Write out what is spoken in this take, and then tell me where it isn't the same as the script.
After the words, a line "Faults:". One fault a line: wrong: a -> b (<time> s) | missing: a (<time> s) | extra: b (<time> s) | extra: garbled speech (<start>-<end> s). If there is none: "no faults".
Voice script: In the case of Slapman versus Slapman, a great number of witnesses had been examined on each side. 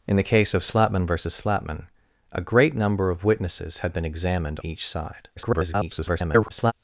In the case of Slapman versus Slapman, a great number of witnesses had been examined each side. [garbled]
Faults:
missing: on (4.6 s)
extra: garbled speech (5.4-6.7 s)